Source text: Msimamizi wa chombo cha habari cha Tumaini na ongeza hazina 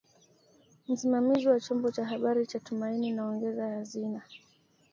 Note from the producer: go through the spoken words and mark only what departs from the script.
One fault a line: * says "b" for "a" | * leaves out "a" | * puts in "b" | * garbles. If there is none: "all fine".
all fine